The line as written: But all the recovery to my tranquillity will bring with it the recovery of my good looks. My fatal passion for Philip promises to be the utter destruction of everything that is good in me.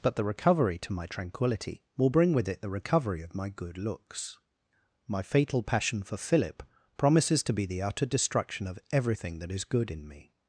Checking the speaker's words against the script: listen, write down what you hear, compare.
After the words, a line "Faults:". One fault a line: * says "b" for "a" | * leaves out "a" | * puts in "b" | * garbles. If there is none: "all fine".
But the recovery to my tranquillity will bring with it the recovery of my good looks. My fatal passion for Philip promises to be the utter destruction of everything that is good in me.
Faults:
* leaves out "all"